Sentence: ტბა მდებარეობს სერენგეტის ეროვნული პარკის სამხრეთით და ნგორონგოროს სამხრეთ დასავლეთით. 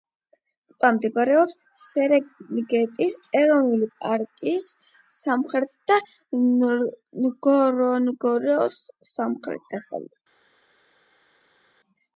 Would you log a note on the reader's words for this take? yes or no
no